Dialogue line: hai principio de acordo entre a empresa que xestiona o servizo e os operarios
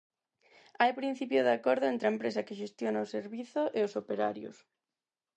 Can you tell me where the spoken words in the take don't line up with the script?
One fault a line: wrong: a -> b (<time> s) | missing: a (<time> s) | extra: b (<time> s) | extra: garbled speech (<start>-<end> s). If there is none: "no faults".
no faults